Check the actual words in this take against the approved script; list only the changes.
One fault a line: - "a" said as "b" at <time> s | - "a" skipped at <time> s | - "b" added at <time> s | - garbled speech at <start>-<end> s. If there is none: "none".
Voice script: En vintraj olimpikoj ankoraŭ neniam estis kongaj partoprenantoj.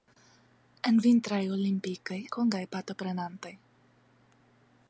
- "ankoraŭ neniam estis" skipped at 2.2 s